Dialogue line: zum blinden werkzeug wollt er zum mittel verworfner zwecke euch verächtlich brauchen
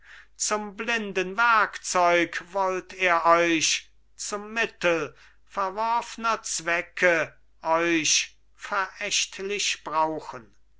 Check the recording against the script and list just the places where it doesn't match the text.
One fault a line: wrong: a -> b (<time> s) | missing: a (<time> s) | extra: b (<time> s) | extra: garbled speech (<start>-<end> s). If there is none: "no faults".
extra: euch (3.2 s)